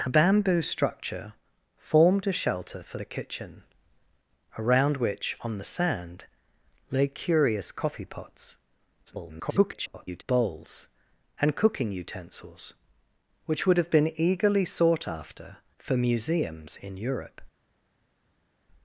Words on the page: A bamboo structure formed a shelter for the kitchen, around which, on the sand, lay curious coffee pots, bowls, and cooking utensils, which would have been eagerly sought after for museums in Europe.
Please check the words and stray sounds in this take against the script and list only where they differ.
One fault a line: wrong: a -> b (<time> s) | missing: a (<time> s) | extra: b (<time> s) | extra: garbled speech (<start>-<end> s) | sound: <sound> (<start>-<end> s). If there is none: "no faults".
extra: garbled speech (9.1-10.2 s)